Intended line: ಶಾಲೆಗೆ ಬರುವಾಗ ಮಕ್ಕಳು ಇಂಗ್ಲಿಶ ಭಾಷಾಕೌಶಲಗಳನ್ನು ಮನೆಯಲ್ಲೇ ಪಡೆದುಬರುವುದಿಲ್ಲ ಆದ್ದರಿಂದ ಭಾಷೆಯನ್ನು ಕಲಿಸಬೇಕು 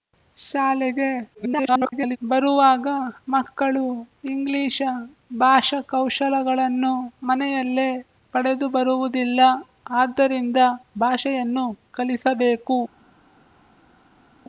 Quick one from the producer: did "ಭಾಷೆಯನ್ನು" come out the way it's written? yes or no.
yes